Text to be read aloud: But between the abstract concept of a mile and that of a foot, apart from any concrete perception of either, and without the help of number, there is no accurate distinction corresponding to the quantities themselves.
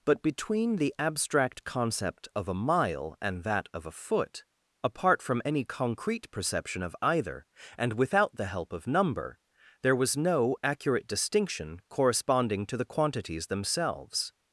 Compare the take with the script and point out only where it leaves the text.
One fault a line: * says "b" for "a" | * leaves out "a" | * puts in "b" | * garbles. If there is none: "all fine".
* says "was" for "is"